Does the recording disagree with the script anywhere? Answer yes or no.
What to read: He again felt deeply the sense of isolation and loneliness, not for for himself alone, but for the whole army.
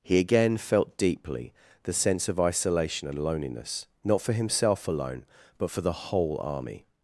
yes